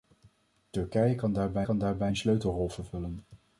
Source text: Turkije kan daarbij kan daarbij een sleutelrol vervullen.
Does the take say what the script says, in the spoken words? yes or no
yes